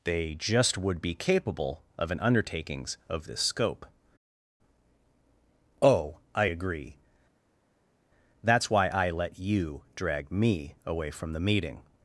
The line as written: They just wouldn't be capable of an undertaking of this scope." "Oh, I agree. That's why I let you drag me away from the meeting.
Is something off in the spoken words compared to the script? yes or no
yes